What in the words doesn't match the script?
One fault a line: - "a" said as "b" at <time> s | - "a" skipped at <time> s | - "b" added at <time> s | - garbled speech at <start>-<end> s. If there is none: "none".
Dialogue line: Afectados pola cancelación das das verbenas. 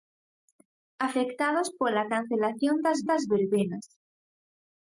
none